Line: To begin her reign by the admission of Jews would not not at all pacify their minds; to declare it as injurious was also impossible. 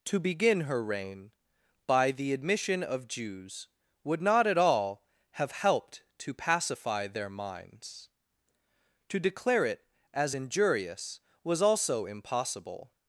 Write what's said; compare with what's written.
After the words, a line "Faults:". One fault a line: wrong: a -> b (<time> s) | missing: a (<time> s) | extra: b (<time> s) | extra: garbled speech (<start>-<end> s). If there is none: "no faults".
To begin her reign by the admission of Jews would not at all have helped to pacify their minds; to declare it as injurious was also impossible.
Faults:
missing: not (4.5 s)
extra: have helped to (5.3 s)